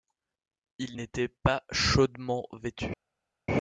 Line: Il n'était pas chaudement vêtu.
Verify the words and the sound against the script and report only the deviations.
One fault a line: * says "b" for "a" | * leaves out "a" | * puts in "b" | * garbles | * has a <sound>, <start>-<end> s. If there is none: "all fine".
all fine